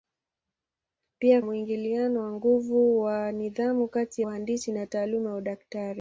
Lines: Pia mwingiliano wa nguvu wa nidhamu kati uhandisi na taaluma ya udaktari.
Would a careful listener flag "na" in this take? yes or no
no